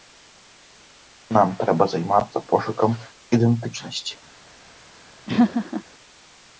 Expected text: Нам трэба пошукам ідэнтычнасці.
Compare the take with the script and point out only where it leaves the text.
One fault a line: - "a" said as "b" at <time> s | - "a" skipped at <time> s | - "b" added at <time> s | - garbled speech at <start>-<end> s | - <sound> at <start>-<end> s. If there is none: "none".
- "займацца" added at 1.9 s
- laugh at 5.3-5.8 s